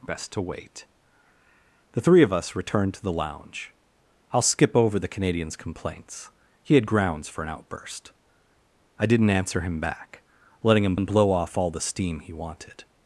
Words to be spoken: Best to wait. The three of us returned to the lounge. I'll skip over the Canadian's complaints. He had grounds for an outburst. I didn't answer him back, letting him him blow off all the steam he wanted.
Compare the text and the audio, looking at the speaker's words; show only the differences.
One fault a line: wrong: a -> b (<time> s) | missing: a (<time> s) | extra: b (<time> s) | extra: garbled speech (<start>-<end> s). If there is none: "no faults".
no faults